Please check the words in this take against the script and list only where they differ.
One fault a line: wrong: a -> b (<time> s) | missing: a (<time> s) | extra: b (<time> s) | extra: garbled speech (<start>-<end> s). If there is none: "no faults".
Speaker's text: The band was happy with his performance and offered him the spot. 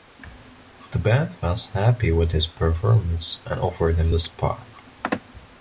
no faults